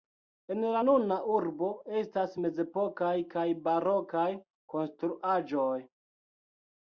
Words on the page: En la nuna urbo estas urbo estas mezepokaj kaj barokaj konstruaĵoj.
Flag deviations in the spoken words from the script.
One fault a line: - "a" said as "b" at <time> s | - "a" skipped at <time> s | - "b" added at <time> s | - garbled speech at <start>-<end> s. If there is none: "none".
- "urbo estas" skipped at 2.3 s